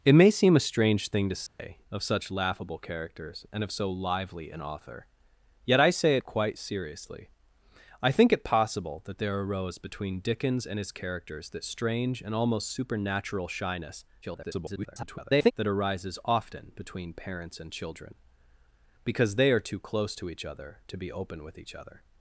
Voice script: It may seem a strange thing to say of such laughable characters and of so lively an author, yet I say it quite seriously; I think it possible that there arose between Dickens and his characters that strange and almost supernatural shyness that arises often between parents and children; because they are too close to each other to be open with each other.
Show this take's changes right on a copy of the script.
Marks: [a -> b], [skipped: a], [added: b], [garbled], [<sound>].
It may seem a strange thing to say [dropout] of such laughable characters and of so lively an author, yet I say it quite seriously; I think it possible that there arose between Dickens and his characters that strange and almost supernatural shyness [garbled] that arises often between parents and children; because they are too close to each other to be open with each other.